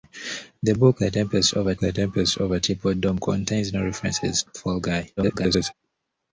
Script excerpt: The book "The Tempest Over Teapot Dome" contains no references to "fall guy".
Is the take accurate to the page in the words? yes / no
no